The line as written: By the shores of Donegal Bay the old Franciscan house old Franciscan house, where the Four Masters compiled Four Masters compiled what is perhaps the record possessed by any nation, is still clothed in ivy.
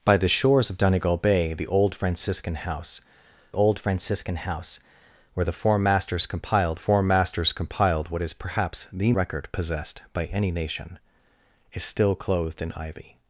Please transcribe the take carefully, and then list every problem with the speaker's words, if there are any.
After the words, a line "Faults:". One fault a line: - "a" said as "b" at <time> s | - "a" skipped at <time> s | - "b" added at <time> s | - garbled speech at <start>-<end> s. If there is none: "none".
By the shores of Donegal Bay the old Franciscan house old Franciscan house, where the Four Masters compiled Four Masters compiled what is perhaps the record possessed by any nation, is still clothed in ivy.
Faults:
none